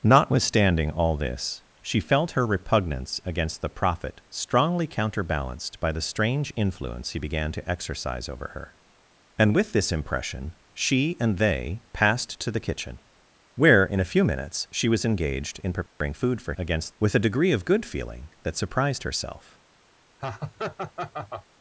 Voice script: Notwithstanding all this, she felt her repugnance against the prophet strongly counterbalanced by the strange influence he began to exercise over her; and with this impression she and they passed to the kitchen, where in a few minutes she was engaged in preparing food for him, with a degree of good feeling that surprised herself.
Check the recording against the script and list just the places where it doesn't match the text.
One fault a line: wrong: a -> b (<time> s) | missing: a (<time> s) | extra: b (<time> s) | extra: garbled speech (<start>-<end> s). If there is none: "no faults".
wrong: him -> against (16.6 s)